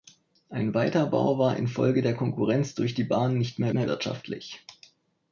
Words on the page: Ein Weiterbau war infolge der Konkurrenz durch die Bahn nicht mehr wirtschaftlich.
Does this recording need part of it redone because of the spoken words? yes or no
yes